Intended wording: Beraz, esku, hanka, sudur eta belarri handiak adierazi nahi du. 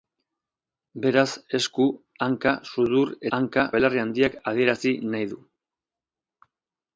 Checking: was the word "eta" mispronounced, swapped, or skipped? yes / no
yes